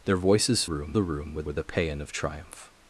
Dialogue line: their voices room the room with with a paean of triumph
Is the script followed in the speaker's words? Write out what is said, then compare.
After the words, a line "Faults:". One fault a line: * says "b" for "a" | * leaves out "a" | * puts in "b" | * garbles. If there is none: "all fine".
their voices room the room with with a paean of triumph
Faults:
all fine